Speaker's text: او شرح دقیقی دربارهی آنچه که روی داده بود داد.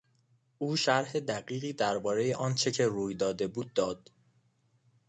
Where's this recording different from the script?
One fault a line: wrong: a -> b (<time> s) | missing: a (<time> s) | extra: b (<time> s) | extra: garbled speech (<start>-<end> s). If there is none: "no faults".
no faults